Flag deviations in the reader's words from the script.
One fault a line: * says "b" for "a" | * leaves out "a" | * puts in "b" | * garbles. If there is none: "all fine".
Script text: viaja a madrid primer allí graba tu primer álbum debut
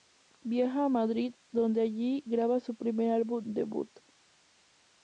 * says "donde" for "primer"
* says "su" for "tu"